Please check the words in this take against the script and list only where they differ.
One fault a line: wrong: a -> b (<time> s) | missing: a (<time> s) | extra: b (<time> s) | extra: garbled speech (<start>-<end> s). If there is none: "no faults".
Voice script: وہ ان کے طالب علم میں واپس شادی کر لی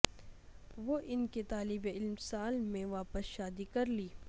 extra: سال (2.2 s)